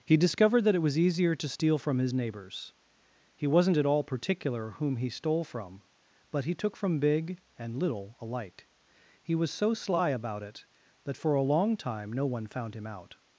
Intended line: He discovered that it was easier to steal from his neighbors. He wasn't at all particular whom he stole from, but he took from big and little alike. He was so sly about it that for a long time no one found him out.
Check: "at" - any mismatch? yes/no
no